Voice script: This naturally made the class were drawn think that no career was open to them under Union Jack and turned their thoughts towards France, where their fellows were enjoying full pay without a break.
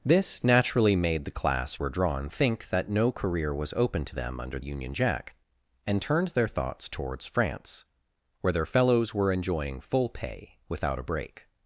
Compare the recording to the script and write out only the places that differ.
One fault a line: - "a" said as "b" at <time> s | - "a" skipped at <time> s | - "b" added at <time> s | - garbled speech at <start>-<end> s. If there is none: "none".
none